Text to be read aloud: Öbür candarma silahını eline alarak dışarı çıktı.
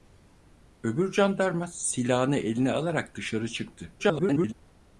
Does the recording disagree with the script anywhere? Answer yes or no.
yes